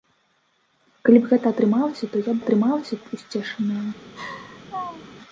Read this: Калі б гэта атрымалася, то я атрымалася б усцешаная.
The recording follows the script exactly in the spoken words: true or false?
true